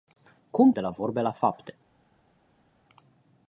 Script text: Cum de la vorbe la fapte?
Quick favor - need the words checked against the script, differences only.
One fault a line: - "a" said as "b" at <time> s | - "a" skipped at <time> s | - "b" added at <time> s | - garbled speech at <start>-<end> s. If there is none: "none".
none